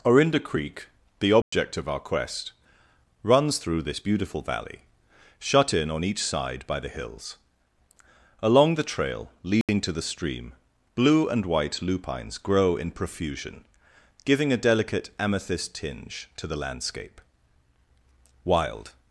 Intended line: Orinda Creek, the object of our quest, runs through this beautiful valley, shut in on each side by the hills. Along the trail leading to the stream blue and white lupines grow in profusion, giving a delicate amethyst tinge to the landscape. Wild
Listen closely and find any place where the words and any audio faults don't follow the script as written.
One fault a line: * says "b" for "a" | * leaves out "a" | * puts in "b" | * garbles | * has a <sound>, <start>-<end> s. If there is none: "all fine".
* has a dropout, 1.4-1.5 s
* has a dropout, 9.6-9.7 s